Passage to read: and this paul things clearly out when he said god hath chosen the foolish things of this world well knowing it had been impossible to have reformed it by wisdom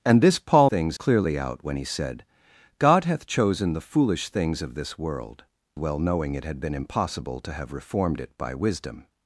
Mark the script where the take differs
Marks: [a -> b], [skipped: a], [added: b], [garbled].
and this paul things clearly out when he said god hath chosen the foolish things of this world well knowing it had been impossible to have reformed it by wisdom